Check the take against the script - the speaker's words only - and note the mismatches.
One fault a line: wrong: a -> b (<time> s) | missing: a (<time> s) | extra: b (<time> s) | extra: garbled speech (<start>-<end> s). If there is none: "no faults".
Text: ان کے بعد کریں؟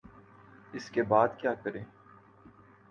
wrong: ان -> اس (0.7 s)
extra: کیا (1.4 s)